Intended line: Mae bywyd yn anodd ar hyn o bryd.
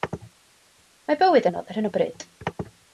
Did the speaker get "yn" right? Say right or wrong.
wrong